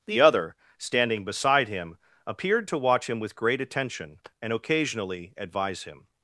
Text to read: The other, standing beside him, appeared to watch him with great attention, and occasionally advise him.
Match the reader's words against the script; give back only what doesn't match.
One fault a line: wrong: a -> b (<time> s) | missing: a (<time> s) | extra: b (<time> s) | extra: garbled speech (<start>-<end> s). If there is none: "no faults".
no faults